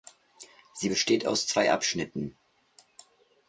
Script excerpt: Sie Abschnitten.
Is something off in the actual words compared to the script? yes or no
yes